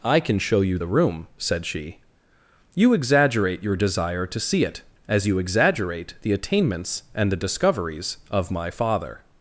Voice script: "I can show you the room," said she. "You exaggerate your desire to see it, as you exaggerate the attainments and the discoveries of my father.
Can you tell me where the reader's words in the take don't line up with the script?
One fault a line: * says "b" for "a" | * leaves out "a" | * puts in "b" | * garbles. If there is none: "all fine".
all fine